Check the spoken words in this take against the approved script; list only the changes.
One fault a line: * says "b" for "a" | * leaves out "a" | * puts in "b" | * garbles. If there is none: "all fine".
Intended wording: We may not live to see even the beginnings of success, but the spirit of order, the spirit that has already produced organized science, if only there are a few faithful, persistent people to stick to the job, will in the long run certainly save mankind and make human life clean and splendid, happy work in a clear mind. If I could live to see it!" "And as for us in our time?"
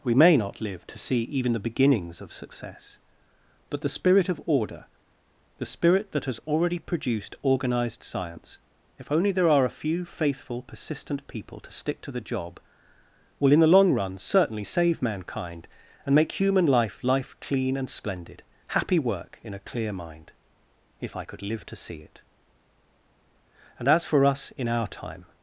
* puts in "life"